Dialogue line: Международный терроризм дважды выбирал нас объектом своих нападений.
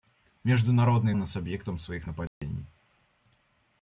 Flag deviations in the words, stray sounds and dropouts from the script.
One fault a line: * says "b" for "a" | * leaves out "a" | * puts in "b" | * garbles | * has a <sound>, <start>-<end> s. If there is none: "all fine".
* leaves out "терроризм дважды выбирал"
* has a dropout, 2.3-2.4 s